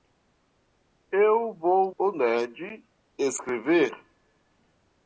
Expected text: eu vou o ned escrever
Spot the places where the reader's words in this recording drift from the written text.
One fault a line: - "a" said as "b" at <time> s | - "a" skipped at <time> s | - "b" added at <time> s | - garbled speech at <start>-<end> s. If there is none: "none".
none